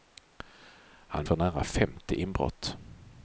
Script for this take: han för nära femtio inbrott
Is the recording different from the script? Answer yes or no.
no